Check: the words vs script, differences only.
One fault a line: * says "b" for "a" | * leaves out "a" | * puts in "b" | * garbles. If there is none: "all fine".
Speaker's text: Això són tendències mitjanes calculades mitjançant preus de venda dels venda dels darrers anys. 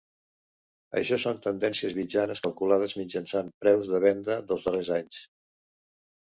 * leaves out "venda dels"